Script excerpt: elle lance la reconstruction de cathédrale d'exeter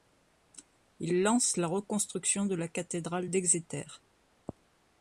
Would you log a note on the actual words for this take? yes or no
yes